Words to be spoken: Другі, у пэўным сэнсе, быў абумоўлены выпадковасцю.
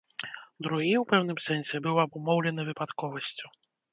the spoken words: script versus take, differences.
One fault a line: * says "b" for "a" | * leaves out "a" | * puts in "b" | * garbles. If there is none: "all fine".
all fine